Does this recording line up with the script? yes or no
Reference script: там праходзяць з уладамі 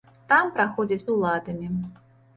yes